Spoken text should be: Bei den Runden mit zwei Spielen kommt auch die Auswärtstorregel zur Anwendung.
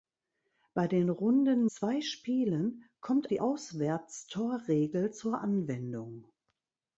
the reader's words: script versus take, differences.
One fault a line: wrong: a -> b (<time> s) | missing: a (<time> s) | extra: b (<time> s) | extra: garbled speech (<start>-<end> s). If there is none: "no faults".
missing: mit (1.7 s)
missing: auch (3.3 s)